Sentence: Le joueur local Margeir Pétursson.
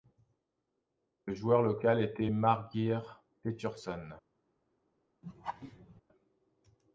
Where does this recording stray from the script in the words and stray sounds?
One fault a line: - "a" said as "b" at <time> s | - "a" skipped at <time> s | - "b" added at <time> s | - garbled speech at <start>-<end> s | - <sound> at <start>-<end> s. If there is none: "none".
- "était" added at 2.0 s
- laugh at 5.2-6.0 s